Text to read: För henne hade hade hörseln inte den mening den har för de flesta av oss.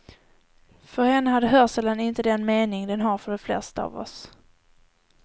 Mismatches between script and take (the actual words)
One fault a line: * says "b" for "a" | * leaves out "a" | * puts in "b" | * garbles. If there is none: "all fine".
* leaves out "hade"